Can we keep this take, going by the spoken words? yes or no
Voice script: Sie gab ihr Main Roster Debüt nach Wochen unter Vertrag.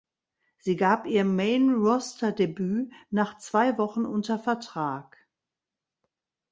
no